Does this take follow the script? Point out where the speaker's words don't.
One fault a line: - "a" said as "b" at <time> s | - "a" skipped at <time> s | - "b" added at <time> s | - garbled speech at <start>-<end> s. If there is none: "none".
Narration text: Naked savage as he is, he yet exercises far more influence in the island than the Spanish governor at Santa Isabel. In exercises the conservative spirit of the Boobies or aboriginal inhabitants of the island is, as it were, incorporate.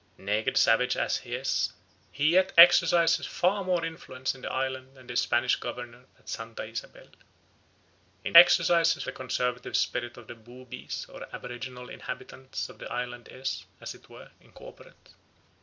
none